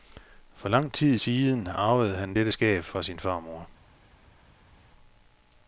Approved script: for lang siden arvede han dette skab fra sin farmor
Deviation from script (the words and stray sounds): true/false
true